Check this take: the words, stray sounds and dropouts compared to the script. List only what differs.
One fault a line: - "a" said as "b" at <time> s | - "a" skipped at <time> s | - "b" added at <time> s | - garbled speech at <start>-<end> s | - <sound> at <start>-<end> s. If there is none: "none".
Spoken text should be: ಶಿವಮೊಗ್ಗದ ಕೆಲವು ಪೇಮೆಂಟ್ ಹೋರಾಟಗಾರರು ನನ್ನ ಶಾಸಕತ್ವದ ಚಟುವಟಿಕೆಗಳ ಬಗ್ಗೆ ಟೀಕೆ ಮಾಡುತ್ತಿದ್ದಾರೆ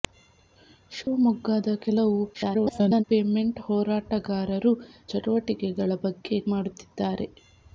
- dropout at 1.0-1.1 s
- garbled speech at 2.3-3.0 s
- "ನನ್ನ ಶಾಸಕತ್ವದ" skipped at 4.7 s
- "ಟೀಕೆ" skipped at 6.4 s